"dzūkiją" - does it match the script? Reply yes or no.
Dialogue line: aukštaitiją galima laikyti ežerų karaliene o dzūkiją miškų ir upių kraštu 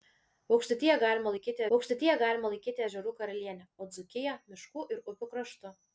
yes